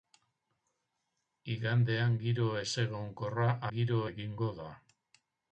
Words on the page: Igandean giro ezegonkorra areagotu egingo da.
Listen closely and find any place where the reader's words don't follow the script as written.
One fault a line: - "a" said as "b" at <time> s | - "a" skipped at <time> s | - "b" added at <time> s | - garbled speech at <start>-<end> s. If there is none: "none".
- "areagotu" said as "giro" at 3.7 s